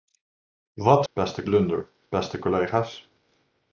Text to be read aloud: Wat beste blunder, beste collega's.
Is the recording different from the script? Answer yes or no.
no